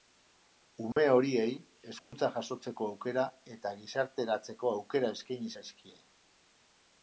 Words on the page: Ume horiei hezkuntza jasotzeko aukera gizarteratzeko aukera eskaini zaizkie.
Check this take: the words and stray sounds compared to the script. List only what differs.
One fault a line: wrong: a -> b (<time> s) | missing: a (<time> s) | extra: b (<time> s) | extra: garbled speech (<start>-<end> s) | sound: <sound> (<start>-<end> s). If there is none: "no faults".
sound: dropout (0.9-1.0 s)
sound: dropout (2.0-2.1 s)
extra: eta (3.6 s)